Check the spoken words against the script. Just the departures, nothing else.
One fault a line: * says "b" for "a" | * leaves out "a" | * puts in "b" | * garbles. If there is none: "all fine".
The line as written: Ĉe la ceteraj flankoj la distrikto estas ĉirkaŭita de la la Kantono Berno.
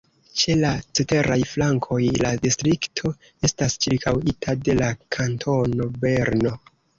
* leaves out "la"